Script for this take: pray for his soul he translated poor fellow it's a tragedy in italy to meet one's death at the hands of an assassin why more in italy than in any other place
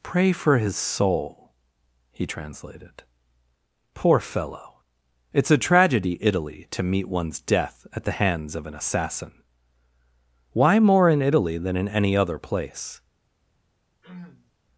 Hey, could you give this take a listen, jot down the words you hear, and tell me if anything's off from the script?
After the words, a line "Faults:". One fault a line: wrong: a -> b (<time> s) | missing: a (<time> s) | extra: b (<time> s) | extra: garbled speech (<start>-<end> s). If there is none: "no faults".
pray for his soul he translated poor fellow it's a tragedy italy to meet one's death at the hands of an assassin why more in italy than in any other place
Faults:
missing: in (6.2 s)